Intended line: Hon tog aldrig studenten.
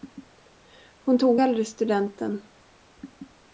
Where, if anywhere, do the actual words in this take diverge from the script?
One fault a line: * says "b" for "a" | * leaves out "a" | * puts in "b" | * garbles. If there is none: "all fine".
all fine